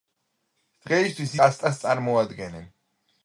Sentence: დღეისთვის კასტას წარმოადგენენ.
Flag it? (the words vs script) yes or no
no